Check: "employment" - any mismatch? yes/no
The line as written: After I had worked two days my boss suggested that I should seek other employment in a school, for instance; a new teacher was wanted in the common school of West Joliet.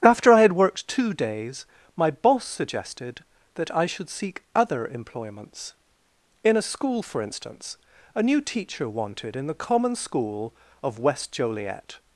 yes